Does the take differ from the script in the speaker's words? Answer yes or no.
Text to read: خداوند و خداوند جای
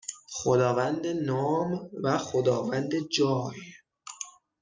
yes